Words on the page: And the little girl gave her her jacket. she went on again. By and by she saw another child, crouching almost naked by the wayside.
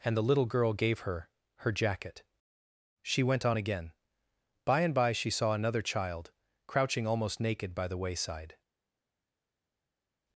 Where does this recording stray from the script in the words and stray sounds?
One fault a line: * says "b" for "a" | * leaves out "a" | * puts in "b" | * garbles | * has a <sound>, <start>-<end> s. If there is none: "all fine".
all fine